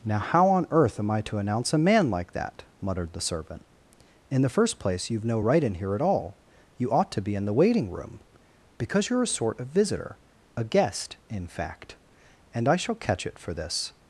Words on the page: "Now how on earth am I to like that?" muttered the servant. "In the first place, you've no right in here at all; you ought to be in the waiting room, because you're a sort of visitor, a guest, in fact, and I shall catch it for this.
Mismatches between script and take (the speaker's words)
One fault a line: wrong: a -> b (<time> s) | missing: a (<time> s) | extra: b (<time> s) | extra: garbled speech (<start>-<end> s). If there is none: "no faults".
extra: announce a man (1.4 s)